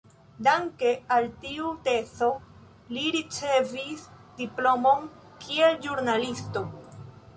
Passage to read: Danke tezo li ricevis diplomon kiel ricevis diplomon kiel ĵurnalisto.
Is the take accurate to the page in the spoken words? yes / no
no